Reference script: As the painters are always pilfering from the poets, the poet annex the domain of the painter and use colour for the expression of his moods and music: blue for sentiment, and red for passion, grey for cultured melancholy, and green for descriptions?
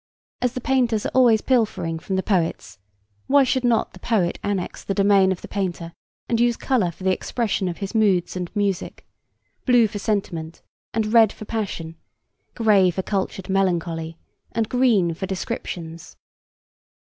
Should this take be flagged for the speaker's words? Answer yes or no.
yes